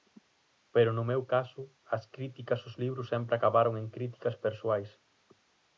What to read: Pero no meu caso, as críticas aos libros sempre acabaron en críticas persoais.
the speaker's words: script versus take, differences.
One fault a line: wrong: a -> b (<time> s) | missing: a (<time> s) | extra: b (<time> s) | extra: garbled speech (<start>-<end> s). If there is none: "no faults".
no faults